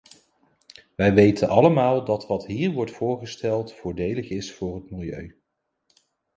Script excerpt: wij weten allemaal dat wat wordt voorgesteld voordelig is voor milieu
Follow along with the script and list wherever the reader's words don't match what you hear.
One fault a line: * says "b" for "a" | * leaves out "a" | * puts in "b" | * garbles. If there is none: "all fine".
* puts in "hier"
* puts in "het"